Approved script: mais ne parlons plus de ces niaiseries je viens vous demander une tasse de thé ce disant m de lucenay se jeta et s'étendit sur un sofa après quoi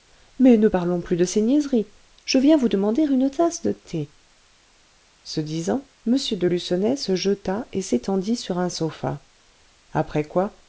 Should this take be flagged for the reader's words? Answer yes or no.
no